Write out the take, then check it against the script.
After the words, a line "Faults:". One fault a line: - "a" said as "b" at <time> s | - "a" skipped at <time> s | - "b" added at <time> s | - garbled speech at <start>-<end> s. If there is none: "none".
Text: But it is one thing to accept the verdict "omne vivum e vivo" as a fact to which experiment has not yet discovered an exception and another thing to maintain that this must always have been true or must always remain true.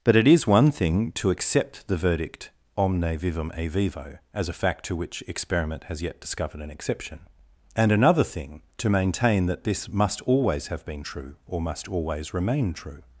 But it is one thing to accept the verdict "omne vivum e vivo" as a fact to which experiment has yet discovered an exception and another thing to maintain that this must always have been true or must always remain true.
Faults:
- "not" skipped at 6.0 s